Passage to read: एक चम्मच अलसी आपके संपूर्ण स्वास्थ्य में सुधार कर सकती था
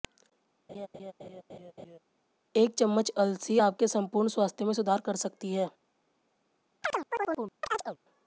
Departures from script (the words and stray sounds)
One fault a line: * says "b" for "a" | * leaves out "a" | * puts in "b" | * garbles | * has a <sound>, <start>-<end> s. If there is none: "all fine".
* has a laugh, 0.7-2.0 s
* says "है" for "था"
* has a chirp, 6.8-8.0 s